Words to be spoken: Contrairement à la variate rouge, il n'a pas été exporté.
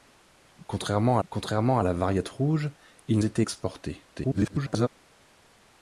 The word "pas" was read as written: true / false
false